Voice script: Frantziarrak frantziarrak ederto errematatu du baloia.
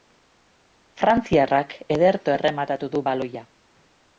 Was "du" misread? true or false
false